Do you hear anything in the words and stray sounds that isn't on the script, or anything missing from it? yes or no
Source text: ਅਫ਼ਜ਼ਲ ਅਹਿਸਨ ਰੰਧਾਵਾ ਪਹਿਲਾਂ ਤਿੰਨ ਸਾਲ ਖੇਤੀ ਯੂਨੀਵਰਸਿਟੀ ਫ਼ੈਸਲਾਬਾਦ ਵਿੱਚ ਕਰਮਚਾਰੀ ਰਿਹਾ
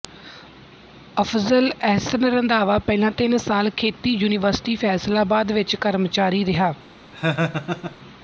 yes